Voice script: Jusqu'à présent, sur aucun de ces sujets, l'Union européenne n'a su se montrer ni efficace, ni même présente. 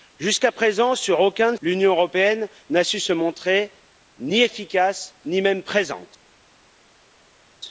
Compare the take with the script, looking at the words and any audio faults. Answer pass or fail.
fail